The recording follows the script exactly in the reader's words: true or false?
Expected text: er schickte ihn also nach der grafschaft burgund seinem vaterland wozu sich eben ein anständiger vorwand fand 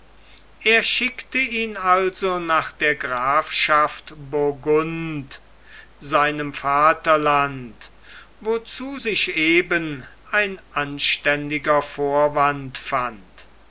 true